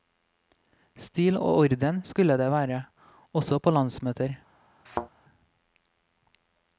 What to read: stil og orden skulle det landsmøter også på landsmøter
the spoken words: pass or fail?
fail